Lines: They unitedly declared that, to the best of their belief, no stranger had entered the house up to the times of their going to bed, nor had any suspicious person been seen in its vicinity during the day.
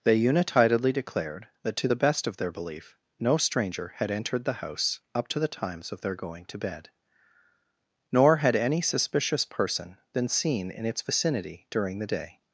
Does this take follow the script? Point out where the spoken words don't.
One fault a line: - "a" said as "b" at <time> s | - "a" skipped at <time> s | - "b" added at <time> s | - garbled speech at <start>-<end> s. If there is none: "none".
none